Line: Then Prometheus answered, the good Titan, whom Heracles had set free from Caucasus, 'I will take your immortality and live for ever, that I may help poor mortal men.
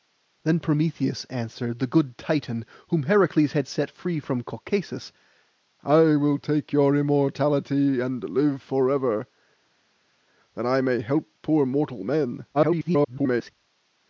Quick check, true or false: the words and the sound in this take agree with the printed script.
false